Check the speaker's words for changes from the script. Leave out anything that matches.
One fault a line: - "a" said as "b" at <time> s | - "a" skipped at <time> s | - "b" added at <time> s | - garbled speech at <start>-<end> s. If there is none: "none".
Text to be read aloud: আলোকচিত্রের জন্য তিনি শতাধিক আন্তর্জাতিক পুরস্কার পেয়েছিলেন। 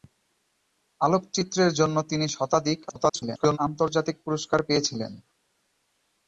- garbled speech at 2.9-3.6 s